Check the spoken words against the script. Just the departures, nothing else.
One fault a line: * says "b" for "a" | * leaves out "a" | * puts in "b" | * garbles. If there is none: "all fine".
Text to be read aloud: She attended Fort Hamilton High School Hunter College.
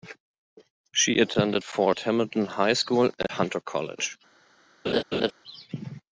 all fine